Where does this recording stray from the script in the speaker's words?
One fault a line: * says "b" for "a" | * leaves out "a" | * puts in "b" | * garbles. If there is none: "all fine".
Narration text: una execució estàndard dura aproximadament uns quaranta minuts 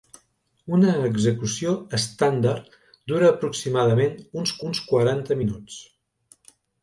* puts in "uns"